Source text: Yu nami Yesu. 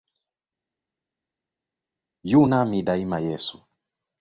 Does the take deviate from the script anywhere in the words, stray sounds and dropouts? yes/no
yes